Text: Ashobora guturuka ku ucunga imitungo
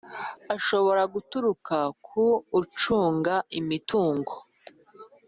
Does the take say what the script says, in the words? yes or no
yes